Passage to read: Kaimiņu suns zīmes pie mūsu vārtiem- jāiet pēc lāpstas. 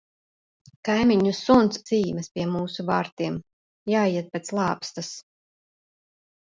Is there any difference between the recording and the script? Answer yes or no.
no